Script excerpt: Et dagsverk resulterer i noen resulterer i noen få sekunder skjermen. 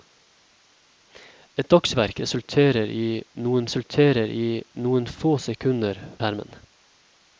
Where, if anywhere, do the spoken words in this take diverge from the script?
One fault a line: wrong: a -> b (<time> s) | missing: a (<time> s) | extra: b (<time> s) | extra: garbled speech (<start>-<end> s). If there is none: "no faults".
no faults